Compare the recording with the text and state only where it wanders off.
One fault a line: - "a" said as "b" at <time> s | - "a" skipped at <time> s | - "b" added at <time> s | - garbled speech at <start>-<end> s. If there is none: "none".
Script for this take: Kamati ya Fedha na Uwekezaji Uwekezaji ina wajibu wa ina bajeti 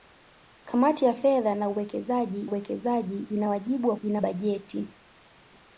none